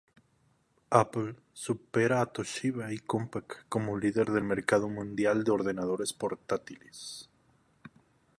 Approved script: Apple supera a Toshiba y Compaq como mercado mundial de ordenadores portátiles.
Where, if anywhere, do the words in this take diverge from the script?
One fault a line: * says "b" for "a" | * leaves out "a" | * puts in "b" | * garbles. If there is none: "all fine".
* puts in "líder del"